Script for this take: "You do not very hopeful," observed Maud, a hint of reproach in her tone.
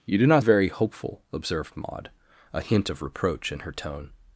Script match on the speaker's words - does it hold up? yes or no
yes